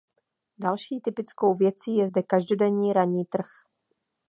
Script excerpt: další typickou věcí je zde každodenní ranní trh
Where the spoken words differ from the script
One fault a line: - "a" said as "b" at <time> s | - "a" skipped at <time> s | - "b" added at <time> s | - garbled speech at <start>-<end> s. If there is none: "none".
none